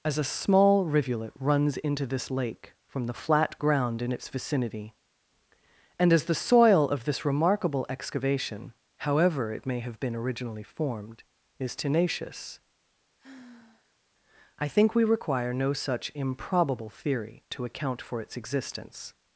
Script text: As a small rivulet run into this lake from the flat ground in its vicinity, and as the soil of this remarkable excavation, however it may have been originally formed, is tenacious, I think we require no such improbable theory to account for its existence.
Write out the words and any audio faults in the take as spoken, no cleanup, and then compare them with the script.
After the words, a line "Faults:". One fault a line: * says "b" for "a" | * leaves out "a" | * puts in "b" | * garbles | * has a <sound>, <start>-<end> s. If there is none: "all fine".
As a small rivulet runs into this lake from the flat ground in its vicinity, and as the soil of this remarkable excavation, however it may have been originally formed, is tenacious, I think we require no such improbable theory to account for its existence.
Faults:
* says "runs" for "run"
* has a sigh, 13.2-14.0 s